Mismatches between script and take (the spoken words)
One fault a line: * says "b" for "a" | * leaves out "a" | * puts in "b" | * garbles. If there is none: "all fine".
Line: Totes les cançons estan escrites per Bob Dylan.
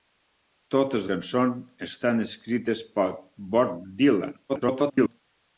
* leaves out "les"
* garbles